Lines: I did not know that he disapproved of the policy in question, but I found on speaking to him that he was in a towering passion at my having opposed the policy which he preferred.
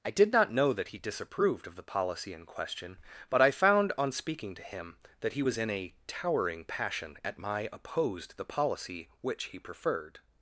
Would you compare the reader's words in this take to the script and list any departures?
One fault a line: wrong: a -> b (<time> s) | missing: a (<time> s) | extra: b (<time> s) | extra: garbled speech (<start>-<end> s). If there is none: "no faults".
missing: having (7.7 s)